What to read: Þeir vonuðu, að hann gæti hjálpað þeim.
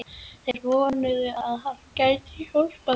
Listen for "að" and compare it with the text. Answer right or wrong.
right